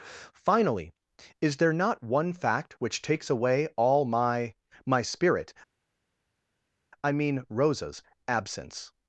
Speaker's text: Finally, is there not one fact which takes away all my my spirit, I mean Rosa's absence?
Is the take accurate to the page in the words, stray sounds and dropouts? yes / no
yes